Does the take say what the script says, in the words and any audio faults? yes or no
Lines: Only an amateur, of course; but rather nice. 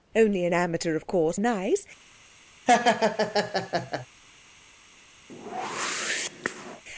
no